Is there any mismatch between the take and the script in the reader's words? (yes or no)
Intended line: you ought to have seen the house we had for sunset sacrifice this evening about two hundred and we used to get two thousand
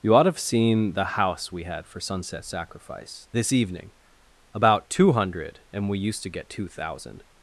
no